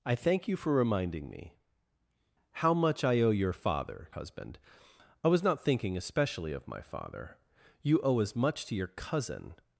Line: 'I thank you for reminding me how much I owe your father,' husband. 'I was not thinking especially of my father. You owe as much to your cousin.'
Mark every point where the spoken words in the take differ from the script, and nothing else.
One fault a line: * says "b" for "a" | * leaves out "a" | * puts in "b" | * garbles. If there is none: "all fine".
all fine